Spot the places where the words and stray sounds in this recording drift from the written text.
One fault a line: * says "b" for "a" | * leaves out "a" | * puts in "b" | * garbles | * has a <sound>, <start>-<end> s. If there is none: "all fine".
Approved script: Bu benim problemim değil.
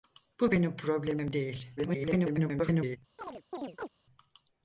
* garbles
* has a chirp, 3.2-3.9 s